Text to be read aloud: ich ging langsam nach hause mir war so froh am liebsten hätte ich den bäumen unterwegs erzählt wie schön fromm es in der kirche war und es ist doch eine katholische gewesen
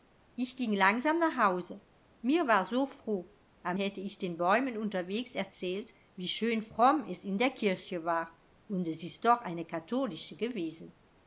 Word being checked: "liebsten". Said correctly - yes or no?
no